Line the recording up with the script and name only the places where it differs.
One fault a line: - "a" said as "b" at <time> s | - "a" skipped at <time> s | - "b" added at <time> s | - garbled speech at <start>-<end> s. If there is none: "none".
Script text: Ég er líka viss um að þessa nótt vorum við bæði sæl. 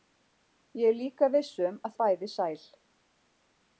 - "þessa nótt vorum" skipped at 2.0 s